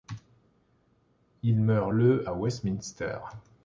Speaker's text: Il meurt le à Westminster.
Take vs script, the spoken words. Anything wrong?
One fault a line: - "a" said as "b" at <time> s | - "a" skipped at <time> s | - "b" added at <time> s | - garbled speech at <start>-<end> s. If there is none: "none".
none